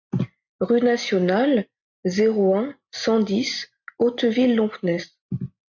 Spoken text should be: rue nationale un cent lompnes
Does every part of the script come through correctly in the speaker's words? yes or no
no